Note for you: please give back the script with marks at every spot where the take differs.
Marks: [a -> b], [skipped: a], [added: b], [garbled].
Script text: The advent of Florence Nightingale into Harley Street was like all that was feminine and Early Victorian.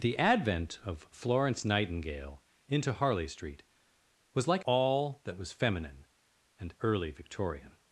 The advent of Florence Nightingale into Harley Street was like all that was feminine and Early Victorian.